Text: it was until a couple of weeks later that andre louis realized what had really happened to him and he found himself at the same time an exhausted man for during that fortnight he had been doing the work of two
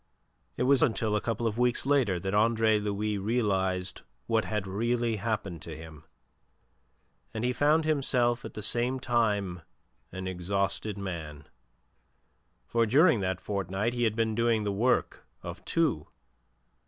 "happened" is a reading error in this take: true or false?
false